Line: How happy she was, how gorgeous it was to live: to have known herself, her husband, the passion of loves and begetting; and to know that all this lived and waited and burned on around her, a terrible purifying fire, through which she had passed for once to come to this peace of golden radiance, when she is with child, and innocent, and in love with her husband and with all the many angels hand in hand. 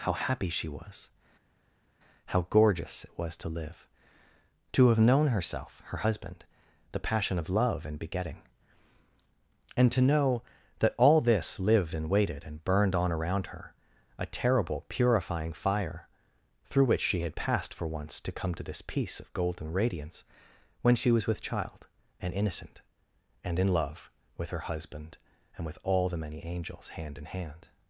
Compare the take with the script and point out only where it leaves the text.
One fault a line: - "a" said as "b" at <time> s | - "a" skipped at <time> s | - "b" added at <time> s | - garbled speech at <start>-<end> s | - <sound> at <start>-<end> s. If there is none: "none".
- "loves" said as "love" at 7.5 s
- "is" said as "was" at 21.1 s